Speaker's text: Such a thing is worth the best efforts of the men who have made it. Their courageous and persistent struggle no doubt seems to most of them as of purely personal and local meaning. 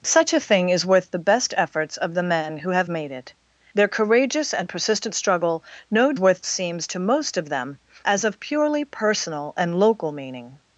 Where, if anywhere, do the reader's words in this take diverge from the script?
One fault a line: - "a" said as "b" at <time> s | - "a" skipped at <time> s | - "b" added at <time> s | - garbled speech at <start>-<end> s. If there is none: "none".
- "doubt" said as "worth" at 6.2 s